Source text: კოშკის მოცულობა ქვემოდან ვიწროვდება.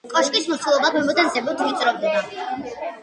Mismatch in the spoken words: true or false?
true